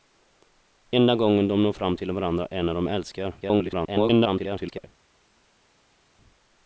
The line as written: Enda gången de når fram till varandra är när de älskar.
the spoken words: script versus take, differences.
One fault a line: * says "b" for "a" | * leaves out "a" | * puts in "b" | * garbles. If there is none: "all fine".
* garbles